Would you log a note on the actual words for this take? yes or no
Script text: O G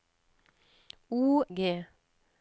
no